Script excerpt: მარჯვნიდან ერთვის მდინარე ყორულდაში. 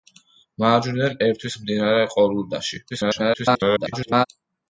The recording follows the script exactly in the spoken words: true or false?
false